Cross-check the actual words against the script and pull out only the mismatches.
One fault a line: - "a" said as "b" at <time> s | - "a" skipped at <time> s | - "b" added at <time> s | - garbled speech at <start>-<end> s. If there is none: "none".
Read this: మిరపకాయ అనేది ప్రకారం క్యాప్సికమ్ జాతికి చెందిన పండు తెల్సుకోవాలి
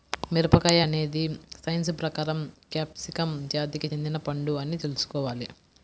- "సైన్స్" added at 1.6 s
- "అని" added at 4.6 s